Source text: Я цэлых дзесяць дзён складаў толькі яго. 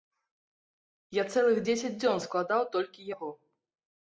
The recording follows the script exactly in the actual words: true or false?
true